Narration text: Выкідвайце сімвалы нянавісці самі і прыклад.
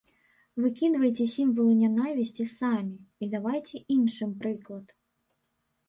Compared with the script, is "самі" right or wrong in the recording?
right